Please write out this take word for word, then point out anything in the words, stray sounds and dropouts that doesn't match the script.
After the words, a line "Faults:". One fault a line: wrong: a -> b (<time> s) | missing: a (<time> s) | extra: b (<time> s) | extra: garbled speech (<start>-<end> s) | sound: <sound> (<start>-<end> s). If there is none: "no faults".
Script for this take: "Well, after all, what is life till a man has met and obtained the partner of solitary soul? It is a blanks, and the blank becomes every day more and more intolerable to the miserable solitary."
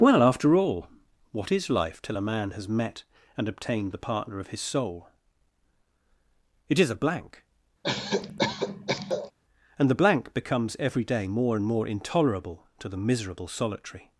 "Well, after all, what is life till a man has met and obtained the partner of his soul? It is a blank, and the blank becomes every day more and more intolerable to the miserable solitary."
Faults:
wrong: solitary -> his (4.5 s)
wrong: blanks -> blank (7.0 s)
sound: cough (7.8-9.3 s)